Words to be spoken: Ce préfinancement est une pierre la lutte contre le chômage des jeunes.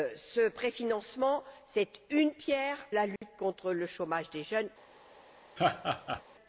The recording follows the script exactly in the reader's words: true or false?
true